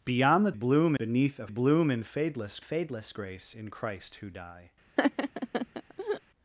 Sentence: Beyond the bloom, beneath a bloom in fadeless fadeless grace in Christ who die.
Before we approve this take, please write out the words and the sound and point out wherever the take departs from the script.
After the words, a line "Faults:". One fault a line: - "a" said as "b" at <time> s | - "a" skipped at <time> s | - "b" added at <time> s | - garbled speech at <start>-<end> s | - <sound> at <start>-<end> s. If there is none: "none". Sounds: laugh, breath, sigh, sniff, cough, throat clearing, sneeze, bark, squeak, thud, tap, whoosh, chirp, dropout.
Beyond the bloom, beneath a bloom in fadeless fadeless grace in Christ who die.
Faults:
- laugh at 5.0-6.2 s